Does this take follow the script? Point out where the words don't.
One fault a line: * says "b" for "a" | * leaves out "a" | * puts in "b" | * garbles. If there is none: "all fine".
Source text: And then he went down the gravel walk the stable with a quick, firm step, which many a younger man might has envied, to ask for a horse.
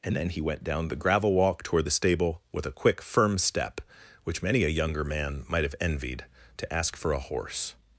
* puts in "toward"
* says "have" for "has"